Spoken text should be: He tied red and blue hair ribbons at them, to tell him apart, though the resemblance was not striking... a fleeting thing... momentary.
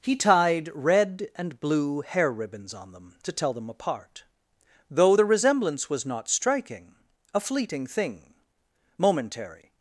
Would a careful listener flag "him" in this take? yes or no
yes